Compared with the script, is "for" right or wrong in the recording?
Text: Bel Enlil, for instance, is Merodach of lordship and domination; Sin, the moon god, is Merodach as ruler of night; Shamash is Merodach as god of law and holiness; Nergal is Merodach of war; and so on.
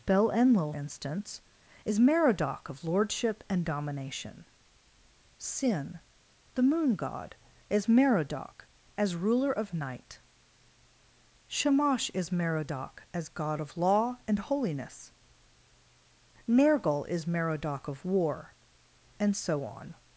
wrong